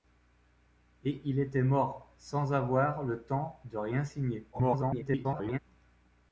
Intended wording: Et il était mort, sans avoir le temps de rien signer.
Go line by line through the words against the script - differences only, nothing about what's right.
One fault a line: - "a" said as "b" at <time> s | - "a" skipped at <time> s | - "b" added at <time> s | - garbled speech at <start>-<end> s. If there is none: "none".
- garbled speech at 4.5-5.6 s